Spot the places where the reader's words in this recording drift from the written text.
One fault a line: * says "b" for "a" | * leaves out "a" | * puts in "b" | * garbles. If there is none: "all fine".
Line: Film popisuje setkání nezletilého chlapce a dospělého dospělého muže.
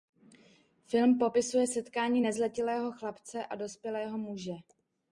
* leaves out "dospělého"